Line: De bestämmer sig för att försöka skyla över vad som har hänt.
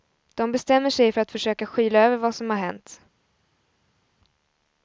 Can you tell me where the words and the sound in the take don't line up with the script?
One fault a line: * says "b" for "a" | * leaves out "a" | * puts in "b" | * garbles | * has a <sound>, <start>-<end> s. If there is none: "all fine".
all fine